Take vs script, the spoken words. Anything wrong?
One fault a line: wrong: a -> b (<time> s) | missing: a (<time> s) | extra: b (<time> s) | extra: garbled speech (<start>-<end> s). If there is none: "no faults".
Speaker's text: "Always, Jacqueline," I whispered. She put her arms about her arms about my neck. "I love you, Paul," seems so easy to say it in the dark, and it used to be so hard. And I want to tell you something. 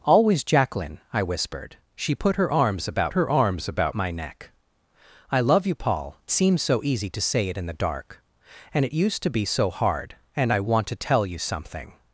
no faults